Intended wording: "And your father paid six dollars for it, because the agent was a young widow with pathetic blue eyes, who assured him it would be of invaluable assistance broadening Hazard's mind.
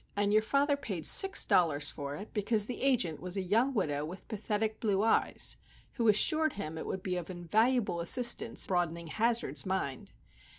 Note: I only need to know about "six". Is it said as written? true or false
true